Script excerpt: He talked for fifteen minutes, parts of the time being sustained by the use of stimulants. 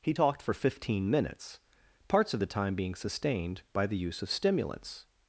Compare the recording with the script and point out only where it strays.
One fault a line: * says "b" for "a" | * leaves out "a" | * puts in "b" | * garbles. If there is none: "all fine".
all fine